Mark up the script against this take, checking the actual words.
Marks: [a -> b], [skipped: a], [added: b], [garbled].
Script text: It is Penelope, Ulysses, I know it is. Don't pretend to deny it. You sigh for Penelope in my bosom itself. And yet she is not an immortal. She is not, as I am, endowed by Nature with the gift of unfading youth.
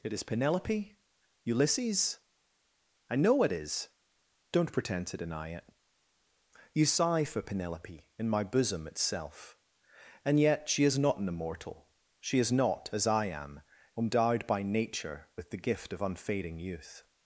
It is Penelope, Ulysses, I know it is. Don't pretend to deny it. You sigh for Penelope in my bosom itself. And yet she is not an immortal. She is not, as I am, endowed by Nature with the gift of unfading youth.